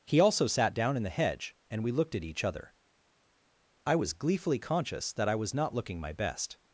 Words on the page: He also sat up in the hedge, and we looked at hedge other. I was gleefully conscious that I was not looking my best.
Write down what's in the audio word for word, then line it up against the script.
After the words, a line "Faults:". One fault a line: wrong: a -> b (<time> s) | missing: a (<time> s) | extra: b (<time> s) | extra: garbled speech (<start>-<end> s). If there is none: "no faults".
He also sat down in the hedge, and we looked at each other. I was gleefully conscious that I was not looking my best.
Faults:
wrong: up -> down (0.7 s)
wrong: hedge -> each (2.2 s)